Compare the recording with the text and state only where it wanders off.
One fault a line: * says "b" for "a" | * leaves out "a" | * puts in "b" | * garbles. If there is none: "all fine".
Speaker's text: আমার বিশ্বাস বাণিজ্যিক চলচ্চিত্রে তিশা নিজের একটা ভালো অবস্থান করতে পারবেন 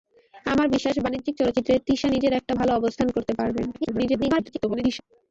* garbles